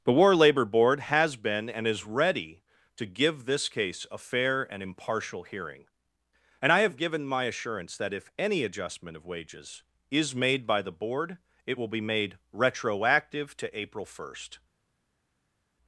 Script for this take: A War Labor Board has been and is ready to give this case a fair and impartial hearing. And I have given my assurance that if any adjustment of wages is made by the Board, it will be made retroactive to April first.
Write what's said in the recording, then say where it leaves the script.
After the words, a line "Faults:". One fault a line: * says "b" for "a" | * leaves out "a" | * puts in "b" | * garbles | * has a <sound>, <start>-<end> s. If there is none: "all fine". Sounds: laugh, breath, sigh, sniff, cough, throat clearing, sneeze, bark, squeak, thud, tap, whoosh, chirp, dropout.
The War Labor Board has been and is ready to give this case a fair and impartial hearing. And I have given my assurance that if any adjustment of wages is made by the Board, it will be made retroactive to April first.
Faults:
* says "The" for "A"